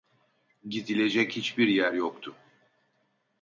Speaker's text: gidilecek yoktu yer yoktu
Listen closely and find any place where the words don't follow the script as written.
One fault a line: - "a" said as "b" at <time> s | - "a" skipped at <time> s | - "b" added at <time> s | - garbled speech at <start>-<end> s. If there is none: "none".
- "yoktu" said as "hiçbir" at 1.4 s